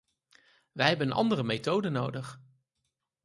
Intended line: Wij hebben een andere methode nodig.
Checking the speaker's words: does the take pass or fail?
pass